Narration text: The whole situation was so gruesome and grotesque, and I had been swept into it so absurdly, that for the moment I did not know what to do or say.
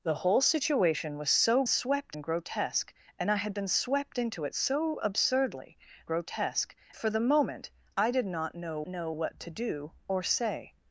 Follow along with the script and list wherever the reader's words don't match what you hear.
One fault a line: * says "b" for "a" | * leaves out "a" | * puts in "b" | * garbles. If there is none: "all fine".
* says "swept" for "gruesome"
* says "grotesque" for "that"
* puts in "know"